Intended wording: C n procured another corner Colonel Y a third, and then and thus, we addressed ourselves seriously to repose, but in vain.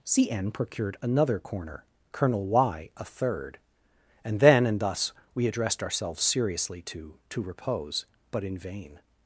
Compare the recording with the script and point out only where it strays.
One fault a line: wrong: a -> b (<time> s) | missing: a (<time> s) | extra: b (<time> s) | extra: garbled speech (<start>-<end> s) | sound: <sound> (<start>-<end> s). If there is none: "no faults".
extra: to (7.3 s)